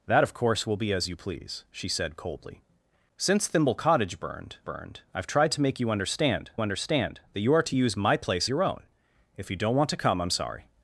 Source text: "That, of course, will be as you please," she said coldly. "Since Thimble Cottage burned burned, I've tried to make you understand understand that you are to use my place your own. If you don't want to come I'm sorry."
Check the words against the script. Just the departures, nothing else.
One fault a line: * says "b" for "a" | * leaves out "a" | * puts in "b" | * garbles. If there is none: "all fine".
all fine